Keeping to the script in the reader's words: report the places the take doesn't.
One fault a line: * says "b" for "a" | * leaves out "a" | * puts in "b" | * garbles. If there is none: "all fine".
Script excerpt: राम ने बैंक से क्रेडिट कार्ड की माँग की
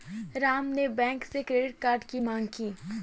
all fine